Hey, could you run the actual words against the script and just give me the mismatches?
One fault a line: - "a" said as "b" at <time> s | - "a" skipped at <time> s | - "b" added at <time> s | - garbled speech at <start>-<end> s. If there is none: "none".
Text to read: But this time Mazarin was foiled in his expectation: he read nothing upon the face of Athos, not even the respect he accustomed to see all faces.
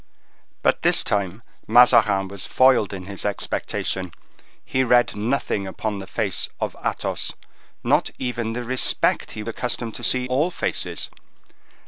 none